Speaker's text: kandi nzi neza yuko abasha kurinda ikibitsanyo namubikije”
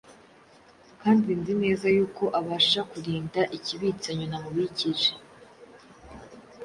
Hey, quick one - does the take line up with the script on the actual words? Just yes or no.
yes